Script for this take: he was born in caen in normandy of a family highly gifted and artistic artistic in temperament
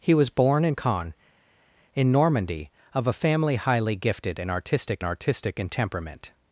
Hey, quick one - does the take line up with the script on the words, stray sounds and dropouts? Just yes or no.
yes